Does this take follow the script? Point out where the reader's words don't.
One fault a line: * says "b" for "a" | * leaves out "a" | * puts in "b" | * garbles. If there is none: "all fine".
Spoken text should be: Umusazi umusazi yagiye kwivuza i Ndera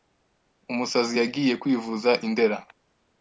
* leaves out "umusazi"